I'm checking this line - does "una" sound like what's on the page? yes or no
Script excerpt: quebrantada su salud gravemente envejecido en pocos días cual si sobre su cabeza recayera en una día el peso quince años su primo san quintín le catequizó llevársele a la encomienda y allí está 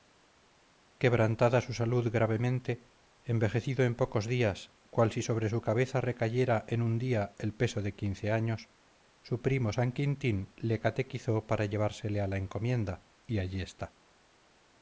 no